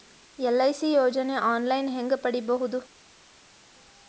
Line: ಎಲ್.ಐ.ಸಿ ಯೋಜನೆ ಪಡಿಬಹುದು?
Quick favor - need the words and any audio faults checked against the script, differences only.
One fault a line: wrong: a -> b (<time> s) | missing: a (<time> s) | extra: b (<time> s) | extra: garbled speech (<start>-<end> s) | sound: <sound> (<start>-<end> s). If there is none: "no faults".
extra: ಆನ್ ಲೈನ್ ಹೇಂಗ (1.4 s)